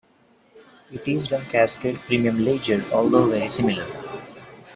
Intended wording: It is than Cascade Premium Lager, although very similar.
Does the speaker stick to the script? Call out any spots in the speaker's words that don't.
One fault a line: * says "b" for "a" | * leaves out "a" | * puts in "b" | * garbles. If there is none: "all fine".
all fine